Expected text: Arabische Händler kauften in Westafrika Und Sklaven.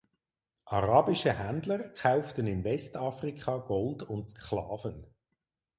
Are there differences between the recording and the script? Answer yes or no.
yes